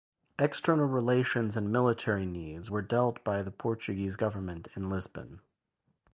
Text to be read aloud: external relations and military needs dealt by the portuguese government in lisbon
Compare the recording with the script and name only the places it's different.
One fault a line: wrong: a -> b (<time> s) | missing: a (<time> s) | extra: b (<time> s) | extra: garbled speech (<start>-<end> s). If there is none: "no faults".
extra: were (2.7 s)